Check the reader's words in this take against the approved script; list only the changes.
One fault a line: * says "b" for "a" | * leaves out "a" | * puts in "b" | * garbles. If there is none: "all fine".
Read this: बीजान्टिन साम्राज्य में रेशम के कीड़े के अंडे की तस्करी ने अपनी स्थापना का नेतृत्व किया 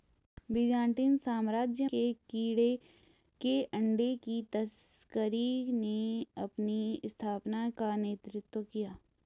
* leaves out "में रेशम"